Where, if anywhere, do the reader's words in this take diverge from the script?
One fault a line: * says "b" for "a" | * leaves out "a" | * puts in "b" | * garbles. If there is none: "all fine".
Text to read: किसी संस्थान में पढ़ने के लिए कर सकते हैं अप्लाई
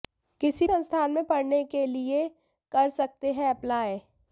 all fine